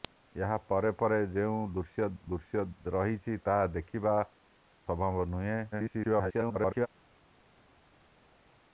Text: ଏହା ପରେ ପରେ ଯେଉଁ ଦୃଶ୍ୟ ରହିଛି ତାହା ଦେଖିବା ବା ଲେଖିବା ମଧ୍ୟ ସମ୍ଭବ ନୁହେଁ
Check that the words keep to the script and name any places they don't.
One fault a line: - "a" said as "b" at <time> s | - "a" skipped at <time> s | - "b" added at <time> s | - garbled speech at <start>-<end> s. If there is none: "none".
- "ଦୃଶ୍ୟ" added at 2.3 s
- "ବା ଲେଖିବା ମଧ୍ୟ" skipped at 4.2 s
- garbled speech at 5.7-6.9 s